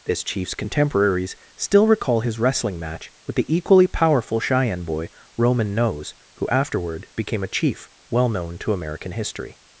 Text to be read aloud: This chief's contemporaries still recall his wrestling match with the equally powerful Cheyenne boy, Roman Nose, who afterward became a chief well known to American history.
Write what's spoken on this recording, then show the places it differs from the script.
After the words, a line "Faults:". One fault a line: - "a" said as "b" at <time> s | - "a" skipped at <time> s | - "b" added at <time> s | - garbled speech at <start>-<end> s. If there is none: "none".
This chief's contemporaries still recall his wrestling match with the equally powerful Cheyenne boy, Roman Nose, who afterward became a chief well known to American history.
Faults:
none